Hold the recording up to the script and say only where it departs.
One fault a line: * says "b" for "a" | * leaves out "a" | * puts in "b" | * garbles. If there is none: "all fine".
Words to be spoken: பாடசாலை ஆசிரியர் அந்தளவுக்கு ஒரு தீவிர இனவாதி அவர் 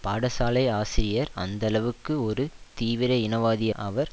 all fine